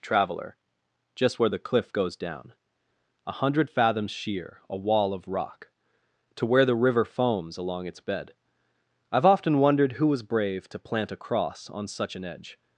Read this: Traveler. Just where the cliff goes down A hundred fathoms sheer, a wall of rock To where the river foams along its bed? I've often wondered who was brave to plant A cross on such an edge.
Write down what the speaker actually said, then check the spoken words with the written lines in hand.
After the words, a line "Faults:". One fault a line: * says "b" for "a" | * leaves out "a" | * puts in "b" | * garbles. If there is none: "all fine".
Traveler. Just where the cliff goes down A hundred fathoms sheer, a wall of rock To where the river foams along its bed? I've often wondered who was brave to plant A cross on such an edge.
Faults:
all fine